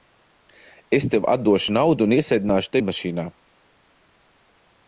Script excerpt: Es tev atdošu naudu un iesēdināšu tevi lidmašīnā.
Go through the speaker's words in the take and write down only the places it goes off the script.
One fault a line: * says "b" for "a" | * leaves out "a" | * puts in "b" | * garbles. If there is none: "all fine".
* leaves out "tevi"